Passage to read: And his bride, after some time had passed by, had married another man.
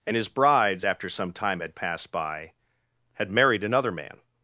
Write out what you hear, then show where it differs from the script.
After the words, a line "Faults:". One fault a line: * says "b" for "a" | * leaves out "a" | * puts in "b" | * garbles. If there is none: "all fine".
And his brides, after some time had passed by, had married another man.
Faults:
* says "brides" for "bride"